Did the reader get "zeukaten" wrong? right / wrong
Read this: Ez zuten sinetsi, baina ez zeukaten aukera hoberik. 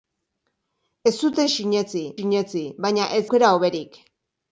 wrong